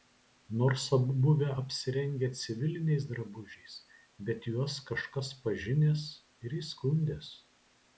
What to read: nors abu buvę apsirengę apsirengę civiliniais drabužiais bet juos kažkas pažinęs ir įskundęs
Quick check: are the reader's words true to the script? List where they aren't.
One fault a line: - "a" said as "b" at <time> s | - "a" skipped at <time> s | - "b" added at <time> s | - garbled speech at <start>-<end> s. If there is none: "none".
- "apsirengę" skipped at 2.3 s